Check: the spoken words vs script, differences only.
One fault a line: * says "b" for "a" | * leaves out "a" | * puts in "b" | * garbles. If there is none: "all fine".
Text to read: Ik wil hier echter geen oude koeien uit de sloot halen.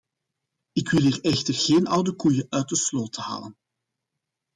all fine